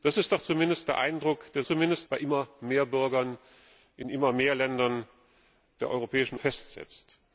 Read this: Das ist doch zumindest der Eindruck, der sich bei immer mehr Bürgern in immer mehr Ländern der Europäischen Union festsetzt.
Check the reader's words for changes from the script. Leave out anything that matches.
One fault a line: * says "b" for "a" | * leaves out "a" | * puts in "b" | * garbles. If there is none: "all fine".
* says "zumindest" for "sich"
* leaves out "Union"